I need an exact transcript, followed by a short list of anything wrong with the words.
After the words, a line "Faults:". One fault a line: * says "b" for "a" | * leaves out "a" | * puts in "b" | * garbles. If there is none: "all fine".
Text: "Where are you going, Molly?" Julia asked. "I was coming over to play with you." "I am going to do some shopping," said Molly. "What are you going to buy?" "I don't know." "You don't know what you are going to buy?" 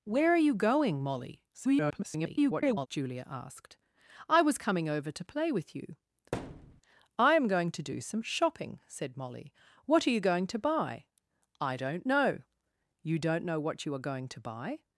"Where are you going, Molly?" [garbled] Julia asked. "I was coming over to play with you." "I am going to do some shopping," said Molly. "What are you going to buy?" "I don't know." "You don't know what you are going to buy?"
Faults:
* garbles